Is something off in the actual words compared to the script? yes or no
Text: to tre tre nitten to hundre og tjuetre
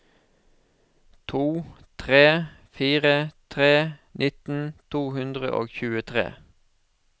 yes